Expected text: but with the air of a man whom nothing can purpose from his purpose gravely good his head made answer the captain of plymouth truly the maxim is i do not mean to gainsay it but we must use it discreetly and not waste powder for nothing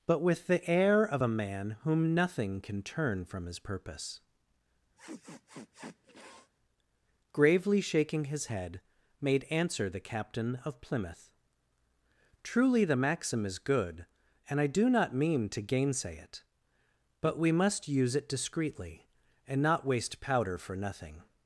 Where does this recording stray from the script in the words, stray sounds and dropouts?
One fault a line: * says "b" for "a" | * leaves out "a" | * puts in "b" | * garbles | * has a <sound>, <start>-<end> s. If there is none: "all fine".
* says "turn" for "purpose"
* has a sniff, 5.0-6.5 s
* says "shaking" for "good"
* puts in "good and"